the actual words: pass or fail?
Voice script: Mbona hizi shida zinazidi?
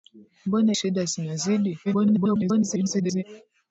fail